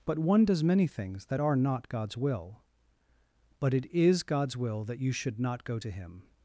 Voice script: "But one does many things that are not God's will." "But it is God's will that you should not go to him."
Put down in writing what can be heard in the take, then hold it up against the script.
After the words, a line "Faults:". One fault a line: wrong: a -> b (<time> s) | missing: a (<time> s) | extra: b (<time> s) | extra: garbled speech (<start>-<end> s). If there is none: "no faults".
"But one does many things that are not God's will." "But it is God's will that you should not go to him."
Faults:
no faults